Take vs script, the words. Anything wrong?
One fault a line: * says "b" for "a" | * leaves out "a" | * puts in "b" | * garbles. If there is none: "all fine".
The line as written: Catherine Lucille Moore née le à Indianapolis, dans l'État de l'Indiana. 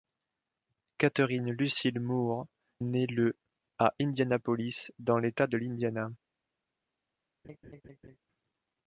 all fine